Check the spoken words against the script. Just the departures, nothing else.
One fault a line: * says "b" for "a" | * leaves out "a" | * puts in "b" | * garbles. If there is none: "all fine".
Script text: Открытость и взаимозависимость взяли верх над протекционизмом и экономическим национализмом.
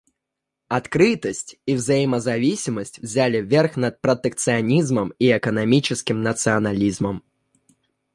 all fine